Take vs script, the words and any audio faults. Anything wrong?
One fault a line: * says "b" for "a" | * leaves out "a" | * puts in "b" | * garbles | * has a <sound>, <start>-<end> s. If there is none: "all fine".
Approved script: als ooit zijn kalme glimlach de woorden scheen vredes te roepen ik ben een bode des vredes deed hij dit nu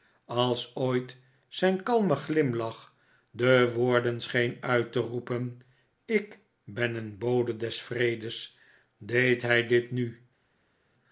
* says "uit" for "vredes"